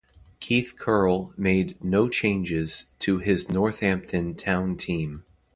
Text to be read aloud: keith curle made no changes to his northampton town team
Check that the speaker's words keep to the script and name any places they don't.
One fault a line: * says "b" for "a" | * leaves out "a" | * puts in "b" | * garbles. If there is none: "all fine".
all fine